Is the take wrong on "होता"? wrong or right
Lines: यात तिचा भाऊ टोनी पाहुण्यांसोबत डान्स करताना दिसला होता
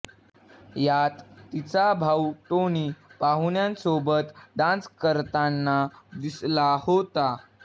right